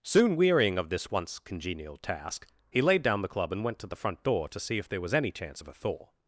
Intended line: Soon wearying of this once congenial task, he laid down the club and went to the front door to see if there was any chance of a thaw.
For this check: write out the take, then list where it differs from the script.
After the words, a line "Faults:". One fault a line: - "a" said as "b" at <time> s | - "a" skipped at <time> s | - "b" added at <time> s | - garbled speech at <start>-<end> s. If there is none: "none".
Soon wearying of this once congenial task, he laid down the club and went to the front door to see if there was any chance of a thaw.
Faults:
none